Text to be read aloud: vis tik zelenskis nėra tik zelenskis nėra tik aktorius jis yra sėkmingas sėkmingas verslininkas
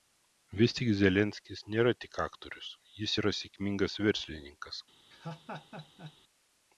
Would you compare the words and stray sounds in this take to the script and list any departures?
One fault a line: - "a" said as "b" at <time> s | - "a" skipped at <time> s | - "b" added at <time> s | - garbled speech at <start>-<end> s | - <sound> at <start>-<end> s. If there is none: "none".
- "zelenskis nėra tik" skipped at 2.2 s
- "sėkmingas" skipped at 4.0 s
- laugh at 5.1-6.2 s